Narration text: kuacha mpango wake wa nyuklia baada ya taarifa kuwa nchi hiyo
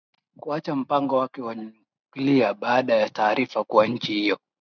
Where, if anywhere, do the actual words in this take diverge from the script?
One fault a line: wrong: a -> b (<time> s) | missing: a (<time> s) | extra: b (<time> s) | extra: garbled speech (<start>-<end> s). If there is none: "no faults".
no faults